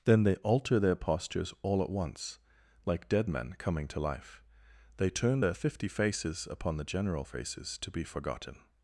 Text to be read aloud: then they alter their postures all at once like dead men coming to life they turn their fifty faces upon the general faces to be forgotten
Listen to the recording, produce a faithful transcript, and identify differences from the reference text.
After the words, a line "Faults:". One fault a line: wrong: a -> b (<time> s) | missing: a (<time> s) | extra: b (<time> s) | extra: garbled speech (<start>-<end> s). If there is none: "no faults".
then they alter their postures all at once like dead men coming to life they turn their fifty faces upon the general faces to be forgotten
Faults:
no faults